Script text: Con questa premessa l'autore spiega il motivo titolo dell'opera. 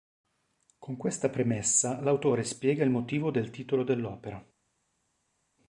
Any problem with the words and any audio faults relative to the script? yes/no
yes